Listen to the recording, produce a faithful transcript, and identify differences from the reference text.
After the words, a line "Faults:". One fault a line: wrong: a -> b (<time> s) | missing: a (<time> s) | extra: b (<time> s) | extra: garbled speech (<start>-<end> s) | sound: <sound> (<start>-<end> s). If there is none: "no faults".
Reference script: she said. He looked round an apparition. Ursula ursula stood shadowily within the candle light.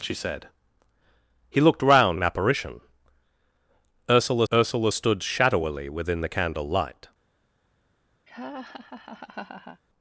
she said. He looked round an apparition. Ursula ursula stood shadowily within the candle light.
Faults:
sound: laugh (8.3-9.8 s)